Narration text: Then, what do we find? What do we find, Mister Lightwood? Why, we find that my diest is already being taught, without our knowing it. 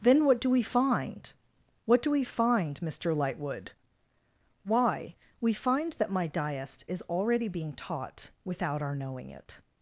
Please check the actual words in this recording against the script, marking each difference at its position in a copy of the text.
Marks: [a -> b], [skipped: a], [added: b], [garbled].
Then, what do we find? What do we find, Mister Lightwood? Why, we find that my diest is already being taught, without our knowing it.